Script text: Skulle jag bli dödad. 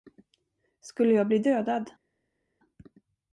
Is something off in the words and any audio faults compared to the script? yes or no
no